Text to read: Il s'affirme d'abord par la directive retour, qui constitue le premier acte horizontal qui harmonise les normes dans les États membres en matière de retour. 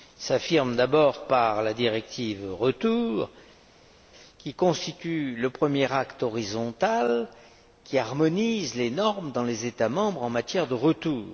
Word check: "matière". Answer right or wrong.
right